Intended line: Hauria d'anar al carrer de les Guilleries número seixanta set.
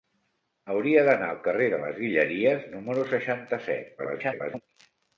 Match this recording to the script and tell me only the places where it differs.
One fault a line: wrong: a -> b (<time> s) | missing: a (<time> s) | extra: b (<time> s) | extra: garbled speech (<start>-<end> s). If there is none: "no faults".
extra: garbled speech (4.0-4.6 s)